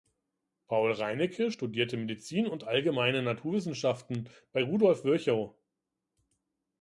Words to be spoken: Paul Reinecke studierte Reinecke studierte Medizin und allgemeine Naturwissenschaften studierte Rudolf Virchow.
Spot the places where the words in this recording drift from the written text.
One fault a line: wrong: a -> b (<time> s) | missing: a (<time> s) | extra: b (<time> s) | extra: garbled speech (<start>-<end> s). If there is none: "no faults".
missing: Reinecke studierte (2.0 s)
wrong: studierte -> bei (4.5 s)